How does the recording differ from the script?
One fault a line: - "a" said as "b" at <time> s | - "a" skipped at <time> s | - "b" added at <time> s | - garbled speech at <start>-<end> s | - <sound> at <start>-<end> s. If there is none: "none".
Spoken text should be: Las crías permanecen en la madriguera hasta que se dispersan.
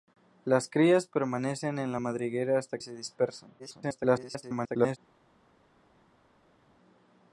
- "que" skipped at 2.8 s
- garbled speech at 3.6-5.0 s